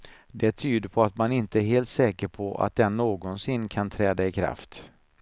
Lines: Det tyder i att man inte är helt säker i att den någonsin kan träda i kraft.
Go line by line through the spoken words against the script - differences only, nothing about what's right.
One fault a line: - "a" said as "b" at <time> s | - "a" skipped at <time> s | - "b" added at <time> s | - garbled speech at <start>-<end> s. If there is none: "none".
- "i" said as "på" at 0.9 s
- "i" said as "på" at 2.3 s